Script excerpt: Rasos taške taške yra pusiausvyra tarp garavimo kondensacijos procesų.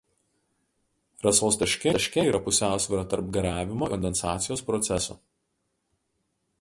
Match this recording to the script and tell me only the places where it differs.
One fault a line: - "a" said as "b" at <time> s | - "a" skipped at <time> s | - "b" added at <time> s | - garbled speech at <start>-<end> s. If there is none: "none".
none